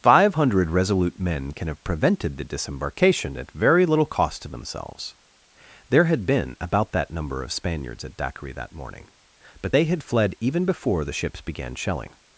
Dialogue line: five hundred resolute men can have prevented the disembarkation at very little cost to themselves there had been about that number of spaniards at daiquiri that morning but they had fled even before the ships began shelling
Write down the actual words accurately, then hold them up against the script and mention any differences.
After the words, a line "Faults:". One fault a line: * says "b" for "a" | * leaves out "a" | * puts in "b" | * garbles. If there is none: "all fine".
five hundred resolute men can have prevented the disembarkation at very little cost to themselves there had been about that number of spaniards at daiquiri that morning but they had fled even before the ships began shelling
Faults:
all fine